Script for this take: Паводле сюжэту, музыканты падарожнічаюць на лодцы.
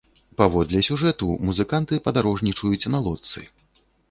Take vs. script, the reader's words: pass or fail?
pass